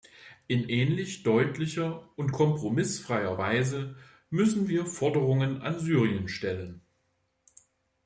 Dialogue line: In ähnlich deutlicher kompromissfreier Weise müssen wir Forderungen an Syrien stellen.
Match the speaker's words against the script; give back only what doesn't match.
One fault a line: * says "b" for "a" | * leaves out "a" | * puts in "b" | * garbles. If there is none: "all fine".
* puts in "und"